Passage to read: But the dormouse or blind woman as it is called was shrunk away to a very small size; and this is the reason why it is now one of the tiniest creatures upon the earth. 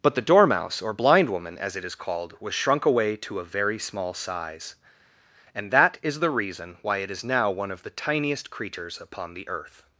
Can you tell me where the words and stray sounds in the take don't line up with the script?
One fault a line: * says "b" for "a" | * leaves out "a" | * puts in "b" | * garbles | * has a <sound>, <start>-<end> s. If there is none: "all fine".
* says "that" for "this"